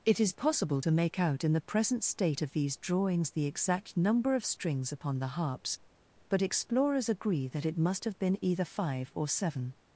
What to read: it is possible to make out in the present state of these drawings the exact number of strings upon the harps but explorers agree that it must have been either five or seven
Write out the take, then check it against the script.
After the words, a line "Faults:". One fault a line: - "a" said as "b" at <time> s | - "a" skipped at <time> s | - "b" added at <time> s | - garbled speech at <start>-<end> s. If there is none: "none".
it is possible to make out in the present state of these drawings the exact number of strings upon the harps but explorers agree that it must have been either five or seven
Faults:
none